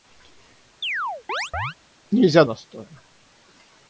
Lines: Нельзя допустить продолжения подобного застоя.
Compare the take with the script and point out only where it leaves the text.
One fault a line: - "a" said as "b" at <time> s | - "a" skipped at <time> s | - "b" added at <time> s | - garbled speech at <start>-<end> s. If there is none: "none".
- "допустить продолжения подобного" skipped at 2.4 s